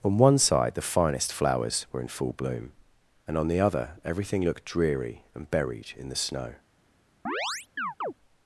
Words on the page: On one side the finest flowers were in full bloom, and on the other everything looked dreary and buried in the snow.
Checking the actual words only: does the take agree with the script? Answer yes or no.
yes